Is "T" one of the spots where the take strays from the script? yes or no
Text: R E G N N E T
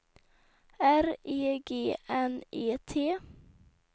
no